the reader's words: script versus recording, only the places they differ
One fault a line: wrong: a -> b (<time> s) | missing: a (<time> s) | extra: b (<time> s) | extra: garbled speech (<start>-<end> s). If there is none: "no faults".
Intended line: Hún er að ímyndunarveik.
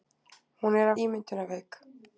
no faults